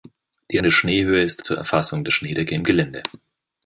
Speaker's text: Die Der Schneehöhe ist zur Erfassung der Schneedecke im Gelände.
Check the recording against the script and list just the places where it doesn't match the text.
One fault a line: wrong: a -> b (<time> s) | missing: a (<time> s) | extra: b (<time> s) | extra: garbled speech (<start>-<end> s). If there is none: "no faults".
no faults